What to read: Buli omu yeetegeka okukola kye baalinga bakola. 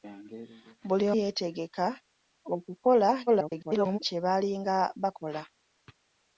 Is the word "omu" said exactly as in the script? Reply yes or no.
no